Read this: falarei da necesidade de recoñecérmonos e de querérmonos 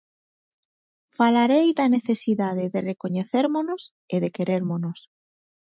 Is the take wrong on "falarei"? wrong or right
right